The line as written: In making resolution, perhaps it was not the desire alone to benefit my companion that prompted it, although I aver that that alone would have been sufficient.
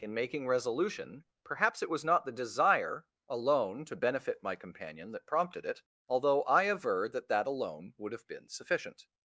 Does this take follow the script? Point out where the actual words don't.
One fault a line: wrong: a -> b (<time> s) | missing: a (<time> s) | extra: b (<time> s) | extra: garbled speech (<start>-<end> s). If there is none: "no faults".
no faults